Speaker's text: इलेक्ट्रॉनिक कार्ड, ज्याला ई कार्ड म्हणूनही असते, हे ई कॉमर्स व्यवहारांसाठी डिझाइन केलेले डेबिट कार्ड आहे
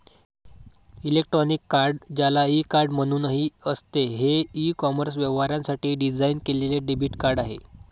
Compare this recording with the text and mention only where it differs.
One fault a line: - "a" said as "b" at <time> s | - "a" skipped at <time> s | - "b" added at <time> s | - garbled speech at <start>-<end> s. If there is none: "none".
none